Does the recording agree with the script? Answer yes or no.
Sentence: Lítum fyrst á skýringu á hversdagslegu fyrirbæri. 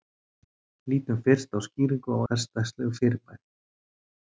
yes